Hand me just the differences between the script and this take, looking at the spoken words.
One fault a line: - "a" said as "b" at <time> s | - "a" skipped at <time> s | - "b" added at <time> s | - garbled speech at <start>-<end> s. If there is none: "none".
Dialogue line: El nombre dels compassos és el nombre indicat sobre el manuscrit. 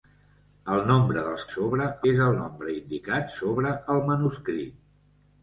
- "compassos" said as "sobre" at 1.5 s